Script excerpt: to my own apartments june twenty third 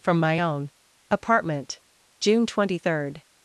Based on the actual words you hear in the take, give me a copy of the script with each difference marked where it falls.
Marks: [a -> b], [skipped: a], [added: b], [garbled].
[to -> from] my own [apartments -> apartment] june twenty third